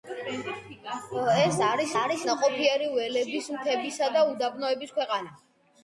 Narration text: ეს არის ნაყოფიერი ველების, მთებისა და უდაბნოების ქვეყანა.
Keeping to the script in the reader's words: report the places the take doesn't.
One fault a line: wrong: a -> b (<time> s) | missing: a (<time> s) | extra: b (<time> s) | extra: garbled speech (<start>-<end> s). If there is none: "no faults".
extra: არის (2.0 s)